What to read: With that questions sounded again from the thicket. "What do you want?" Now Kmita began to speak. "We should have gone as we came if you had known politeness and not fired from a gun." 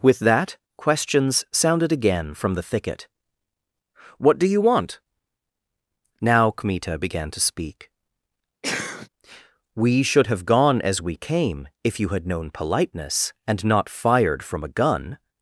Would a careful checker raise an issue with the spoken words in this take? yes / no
no